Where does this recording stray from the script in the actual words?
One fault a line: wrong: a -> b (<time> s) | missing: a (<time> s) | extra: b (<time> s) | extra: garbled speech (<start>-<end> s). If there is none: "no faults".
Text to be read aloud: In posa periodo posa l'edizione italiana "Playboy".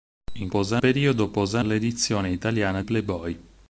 no faults